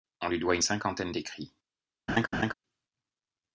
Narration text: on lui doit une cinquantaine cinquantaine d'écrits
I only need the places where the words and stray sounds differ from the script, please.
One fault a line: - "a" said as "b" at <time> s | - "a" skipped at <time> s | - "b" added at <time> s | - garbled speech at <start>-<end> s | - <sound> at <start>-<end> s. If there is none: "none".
- "cinquantaine" skipped at 1.1 s
- laugh at 2.1-2.5 s